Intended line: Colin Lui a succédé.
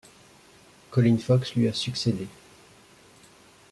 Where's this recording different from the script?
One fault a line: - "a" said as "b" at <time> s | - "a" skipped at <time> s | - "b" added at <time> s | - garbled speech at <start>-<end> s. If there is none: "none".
- "Fox" added at 1.2 s